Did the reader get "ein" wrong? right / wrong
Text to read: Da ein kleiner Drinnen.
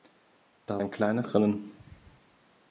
right